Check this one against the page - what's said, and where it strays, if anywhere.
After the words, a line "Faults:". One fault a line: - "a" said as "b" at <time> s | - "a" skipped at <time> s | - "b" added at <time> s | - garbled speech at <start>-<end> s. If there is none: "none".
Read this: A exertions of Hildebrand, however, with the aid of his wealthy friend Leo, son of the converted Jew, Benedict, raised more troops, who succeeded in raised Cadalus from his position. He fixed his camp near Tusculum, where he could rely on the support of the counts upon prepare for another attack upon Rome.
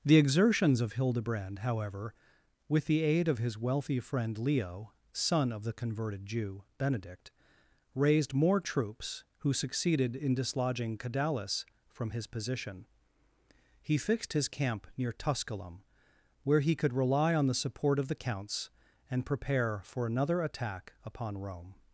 The exertions of Hildebrand, however, with the aid of his wealthy friend Leo, son of the converted Jew, Benedict, raised more troops, who succeeded in dislodging Cadalus from his position. He fixed his camp near Tusculum, where he could rely on the support of the counts and prepare for another attack upon Rome.
Faults:
- "A" said as "The" at 0.0 s
- "raised" said as "dislodging" at 10.3 s
- "upon" said as "and" at 19.1 s